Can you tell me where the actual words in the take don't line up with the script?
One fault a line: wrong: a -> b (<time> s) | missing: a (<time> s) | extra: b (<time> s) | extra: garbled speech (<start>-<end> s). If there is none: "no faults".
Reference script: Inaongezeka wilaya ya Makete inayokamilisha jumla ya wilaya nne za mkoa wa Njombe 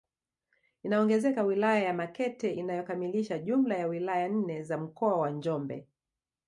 no faults